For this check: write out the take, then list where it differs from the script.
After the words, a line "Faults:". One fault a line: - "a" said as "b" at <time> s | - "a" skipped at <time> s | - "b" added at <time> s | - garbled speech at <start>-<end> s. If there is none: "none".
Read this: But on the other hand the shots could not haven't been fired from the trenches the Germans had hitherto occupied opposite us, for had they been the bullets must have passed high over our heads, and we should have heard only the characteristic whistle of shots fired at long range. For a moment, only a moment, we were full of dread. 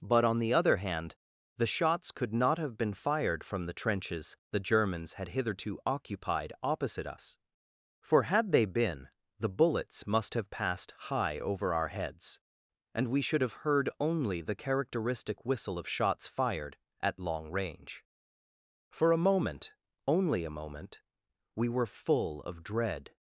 But on the other hand the shots could not have been fired from the trenches the Germans had hitherto occupied opposite us, for had they been the bullets must have passed high over our heads, and we should have heard only the characteristic whistle of shots fired at long range. For a moment, only a moment, we were full of dread.
Faults:
- "haven't" said as "have" at 2.6 s